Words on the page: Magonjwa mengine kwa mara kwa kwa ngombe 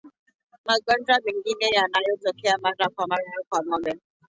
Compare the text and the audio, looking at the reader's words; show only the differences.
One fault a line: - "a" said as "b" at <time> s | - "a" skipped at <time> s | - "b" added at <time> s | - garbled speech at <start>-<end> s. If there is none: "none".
- "kwa" said as "yanayotokea" at 1.8 s
- "mara" added at 3.0 s